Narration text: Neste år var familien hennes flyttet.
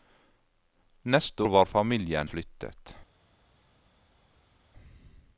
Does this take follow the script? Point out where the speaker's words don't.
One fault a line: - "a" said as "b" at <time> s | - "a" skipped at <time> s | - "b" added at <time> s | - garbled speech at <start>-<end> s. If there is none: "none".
- "år" skipped at 1.4 s
- "hennes" skipped at 2.3 s